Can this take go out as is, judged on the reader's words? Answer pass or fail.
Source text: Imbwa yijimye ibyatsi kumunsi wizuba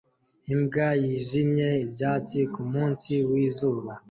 pass